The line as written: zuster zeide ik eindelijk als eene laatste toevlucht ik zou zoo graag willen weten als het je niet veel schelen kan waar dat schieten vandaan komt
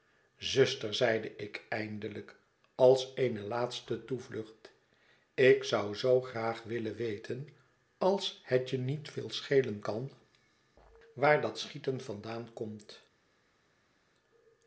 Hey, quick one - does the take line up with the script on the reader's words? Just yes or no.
yes